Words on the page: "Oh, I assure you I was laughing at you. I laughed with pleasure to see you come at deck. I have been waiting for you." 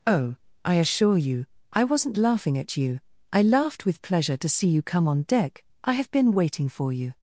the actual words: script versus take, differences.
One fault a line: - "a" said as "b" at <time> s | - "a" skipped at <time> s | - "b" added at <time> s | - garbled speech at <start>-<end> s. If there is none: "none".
- "was" said as "wasn't" at 1.8 s
- "at" said as "on" at 5.1 s